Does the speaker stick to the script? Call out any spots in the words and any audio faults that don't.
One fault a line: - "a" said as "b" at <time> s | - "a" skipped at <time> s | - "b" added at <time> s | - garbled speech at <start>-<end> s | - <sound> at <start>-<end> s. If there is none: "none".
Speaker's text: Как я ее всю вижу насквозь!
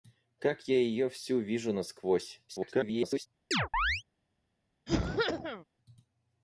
- garbled speech at 2.5-3.3 s
- chirp at 3.5-4.0 s
- cough at 4.9-5.7 s